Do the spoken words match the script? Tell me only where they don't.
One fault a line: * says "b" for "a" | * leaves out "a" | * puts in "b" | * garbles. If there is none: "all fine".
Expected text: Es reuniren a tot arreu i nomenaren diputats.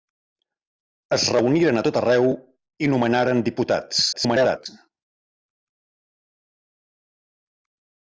* garbles